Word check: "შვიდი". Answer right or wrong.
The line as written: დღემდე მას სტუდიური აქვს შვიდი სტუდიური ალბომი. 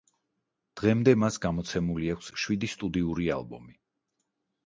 right